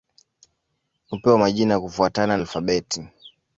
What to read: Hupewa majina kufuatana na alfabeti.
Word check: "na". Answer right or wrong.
wrong